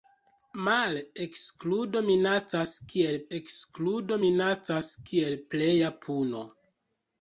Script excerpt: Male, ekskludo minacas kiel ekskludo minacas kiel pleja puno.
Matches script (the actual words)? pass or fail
pass